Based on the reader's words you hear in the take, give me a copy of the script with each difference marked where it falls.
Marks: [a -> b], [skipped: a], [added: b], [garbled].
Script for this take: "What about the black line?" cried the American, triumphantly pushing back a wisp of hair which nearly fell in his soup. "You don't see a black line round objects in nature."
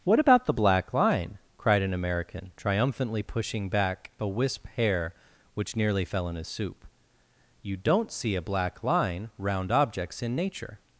"What about the black line?" cried [the -> an] American, triumphantly pushing back a wisp [skipped: of] hair which nearly fell in his soup. "You don't see a black line round objects in nature."